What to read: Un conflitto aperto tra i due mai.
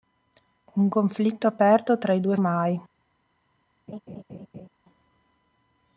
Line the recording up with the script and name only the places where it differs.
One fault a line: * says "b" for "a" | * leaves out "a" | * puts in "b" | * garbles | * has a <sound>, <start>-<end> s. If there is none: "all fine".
* has a laugh, 3.9-4.7 s